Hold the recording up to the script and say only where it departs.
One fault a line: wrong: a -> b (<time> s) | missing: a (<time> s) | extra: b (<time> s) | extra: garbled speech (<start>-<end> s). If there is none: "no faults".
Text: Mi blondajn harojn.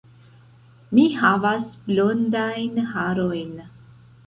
extra: havas (1.2 s)